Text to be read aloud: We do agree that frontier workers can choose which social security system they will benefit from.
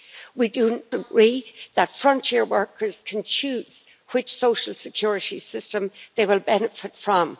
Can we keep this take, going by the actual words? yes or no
yes